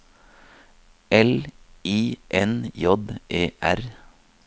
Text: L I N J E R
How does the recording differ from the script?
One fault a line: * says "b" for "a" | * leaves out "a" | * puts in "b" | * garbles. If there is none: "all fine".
all fine